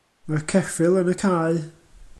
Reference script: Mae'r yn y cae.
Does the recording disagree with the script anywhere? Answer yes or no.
yes